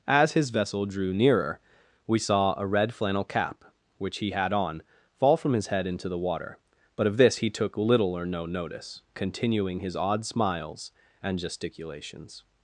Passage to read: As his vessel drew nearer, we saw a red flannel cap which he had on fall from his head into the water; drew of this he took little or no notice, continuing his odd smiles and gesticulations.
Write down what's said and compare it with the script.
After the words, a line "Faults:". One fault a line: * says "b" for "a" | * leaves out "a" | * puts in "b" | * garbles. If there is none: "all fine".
As his vessel drew nearer, we saw a red flannel cap which he had on fall from his head into the water; but of this he took little or no notice, continuing his odd smiles and gesticulations.
Faults:
* says "but" for "drew"